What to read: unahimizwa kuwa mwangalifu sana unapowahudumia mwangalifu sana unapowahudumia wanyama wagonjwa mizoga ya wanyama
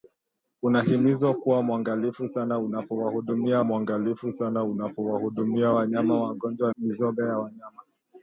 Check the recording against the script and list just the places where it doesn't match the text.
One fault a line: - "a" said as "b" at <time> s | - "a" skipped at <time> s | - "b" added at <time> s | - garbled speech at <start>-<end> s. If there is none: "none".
none